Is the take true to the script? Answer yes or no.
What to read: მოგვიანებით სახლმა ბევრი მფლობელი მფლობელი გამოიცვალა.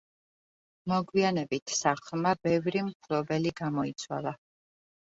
no